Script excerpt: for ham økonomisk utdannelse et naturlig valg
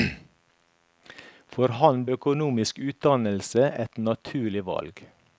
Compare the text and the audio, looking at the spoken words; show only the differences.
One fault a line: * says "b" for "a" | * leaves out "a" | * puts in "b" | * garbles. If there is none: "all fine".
all fine